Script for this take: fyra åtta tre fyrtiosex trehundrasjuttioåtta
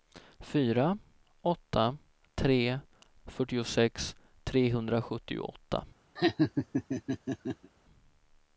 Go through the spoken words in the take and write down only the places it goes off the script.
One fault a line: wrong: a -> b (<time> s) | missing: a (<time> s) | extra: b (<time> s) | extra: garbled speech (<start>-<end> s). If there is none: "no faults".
no faults